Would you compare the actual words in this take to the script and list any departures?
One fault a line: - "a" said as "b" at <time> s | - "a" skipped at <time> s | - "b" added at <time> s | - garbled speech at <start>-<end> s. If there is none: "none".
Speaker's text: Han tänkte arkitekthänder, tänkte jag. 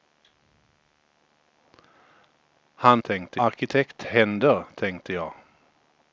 none